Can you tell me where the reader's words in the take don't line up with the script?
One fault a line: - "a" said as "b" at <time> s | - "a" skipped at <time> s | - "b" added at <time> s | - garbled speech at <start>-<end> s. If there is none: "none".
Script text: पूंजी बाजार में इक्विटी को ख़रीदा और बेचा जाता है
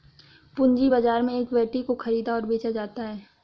none